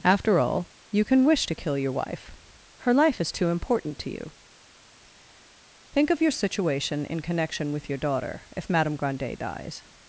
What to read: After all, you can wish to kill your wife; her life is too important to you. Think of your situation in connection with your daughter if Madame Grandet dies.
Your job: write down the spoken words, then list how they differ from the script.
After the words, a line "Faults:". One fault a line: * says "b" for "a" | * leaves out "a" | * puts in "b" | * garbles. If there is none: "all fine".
After all, you can wish to kill your wife; her life is too important to you. Think of your situation in connection with your daughter if Madame Grandet dies.
Faults:
all fine